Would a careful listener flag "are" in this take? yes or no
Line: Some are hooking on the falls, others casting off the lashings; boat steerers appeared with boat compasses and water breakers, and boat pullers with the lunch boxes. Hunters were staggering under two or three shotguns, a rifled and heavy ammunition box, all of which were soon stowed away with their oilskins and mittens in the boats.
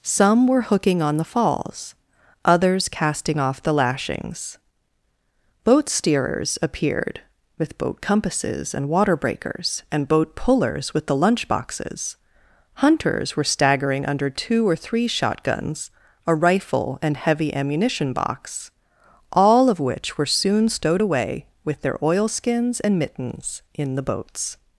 yes